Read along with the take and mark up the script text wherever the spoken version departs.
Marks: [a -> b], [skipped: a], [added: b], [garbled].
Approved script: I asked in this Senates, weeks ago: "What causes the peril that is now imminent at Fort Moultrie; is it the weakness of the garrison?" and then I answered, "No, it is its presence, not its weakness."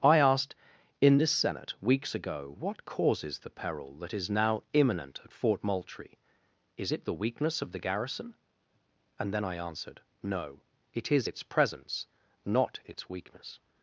I asked in this [Senates, -> Senate] weeks ago: "What causes the peril that is now imminent at Fort Moultrie; is it the weakness of the garrison?" and then I answered, "No, it is its presence, not its weakness."